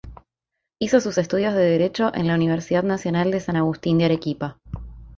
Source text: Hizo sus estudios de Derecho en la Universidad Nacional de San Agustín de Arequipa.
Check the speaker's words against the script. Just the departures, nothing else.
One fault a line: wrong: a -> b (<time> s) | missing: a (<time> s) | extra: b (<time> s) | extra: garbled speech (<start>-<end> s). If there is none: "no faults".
no faults